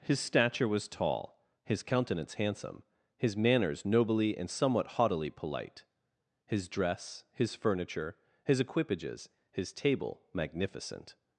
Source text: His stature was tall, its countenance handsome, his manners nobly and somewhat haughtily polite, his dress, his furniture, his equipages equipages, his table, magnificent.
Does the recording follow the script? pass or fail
fail